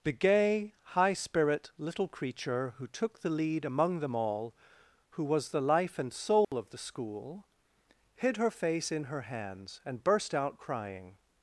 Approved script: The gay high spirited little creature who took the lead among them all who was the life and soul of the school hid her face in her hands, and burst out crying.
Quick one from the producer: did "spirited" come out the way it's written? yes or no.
no